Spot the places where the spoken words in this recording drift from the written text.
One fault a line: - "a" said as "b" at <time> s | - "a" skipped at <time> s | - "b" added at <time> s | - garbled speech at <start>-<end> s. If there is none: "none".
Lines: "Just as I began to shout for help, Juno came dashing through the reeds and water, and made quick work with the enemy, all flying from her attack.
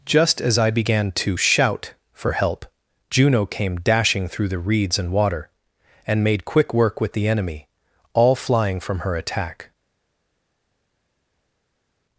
none